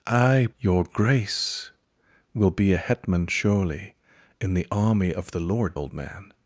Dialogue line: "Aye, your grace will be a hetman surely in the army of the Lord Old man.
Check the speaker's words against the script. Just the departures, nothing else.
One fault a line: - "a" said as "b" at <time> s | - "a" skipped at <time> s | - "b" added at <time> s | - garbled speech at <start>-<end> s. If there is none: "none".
none